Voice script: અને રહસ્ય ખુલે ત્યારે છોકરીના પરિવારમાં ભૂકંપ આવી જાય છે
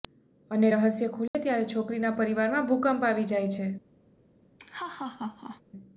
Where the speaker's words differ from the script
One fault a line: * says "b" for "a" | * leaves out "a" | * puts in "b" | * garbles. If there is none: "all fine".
all fine